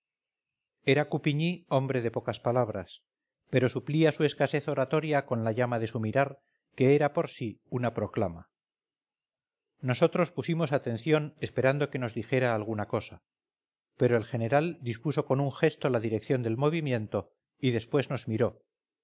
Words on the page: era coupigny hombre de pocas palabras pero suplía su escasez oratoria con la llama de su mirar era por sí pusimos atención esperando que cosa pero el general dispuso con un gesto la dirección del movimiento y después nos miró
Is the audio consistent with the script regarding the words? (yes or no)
no